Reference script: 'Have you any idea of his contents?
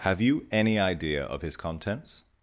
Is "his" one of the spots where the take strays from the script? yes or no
no